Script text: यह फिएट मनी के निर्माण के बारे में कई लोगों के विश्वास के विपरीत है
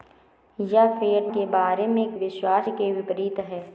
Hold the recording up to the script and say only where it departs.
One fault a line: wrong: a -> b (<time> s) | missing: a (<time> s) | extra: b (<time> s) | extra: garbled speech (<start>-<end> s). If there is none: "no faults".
missing: मनी (1.3 s)
missing: निर्माण के (1.5 s)
missing: कई लोगों के (2.2 s)